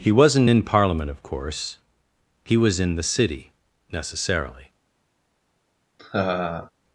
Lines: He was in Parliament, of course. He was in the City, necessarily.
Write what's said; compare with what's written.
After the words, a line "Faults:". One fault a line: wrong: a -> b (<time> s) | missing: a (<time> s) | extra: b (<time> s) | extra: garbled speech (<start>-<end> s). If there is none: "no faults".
He wasn't in Parliament, of course. He was in the City, necessarily.
Faults:
wrong: was -> wasn't (0.1 s)